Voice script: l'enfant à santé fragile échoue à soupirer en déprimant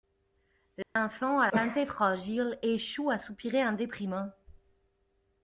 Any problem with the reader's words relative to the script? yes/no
no